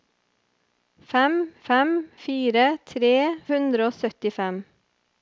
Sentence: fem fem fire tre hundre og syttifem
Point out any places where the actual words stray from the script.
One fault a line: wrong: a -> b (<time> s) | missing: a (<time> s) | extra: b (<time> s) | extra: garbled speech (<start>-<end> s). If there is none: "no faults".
no faults